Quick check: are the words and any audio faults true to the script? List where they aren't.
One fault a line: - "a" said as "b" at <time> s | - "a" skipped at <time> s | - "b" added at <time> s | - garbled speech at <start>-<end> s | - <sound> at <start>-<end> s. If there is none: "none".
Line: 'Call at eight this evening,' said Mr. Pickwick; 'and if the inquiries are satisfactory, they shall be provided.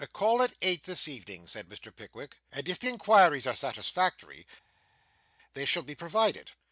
none